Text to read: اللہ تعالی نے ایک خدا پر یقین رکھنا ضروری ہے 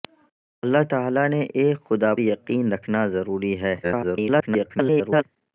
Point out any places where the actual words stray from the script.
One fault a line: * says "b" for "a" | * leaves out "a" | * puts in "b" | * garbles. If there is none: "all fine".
* leaves out "پر"
* garbles